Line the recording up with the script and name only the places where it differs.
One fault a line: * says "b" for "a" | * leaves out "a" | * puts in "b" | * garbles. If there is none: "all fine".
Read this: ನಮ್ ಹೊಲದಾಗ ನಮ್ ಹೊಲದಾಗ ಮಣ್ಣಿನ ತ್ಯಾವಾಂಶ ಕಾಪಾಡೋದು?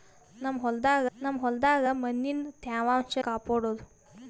all fine